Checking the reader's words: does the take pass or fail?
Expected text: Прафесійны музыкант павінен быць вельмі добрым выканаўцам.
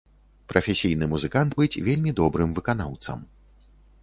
fail